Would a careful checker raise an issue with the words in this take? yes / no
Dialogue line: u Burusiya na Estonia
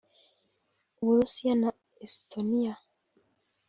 no